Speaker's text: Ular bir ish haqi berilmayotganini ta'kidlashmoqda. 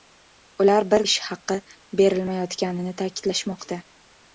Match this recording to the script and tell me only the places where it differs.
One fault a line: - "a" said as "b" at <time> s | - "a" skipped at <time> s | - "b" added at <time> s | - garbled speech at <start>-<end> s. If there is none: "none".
none